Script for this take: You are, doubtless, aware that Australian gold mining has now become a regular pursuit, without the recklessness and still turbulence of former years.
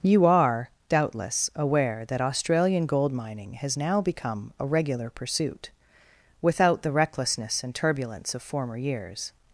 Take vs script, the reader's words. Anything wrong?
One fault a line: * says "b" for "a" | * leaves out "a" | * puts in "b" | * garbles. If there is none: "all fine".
* leaves out "still"